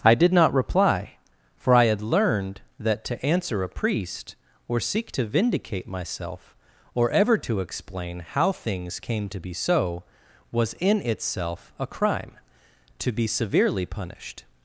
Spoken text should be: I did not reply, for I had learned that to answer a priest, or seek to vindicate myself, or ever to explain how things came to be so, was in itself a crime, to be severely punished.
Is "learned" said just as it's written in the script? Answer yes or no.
yes